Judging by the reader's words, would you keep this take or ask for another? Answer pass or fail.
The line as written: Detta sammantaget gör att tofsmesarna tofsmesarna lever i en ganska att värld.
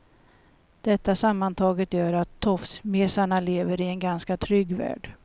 fail